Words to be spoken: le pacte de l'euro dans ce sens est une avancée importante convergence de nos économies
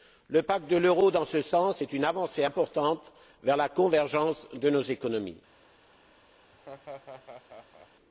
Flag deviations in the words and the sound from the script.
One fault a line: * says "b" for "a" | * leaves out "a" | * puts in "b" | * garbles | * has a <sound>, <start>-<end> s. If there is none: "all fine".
* puts in "vers la"
* has a laugh, 6.5-7.9 s